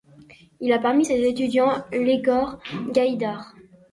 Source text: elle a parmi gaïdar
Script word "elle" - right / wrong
wrong